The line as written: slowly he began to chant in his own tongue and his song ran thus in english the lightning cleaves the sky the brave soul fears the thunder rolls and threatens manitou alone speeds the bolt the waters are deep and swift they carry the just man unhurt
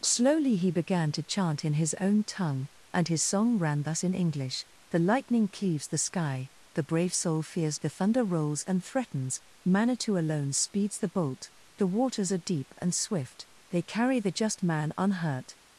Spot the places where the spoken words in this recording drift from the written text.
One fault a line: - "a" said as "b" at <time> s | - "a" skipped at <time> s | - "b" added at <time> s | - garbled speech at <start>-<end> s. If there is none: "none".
none